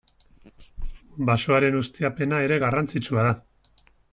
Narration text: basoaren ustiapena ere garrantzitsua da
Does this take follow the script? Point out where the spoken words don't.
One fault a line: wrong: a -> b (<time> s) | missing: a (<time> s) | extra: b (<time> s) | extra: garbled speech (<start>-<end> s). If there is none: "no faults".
no faults